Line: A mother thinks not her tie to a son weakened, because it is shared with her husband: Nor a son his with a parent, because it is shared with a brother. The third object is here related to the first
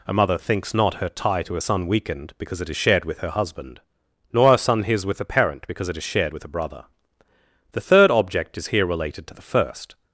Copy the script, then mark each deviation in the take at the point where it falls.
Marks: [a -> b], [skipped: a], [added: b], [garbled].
A mother thinks not her tie to a son weakened, because it is shared with her husband: Nor a son his with a parent, because it is shared with a brother. The third object is here related to the first